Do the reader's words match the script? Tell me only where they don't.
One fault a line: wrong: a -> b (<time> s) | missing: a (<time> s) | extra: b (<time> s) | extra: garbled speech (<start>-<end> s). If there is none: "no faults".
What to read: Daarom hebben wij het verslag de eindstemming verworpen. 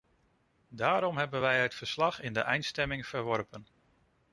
extra: in (2.2 s)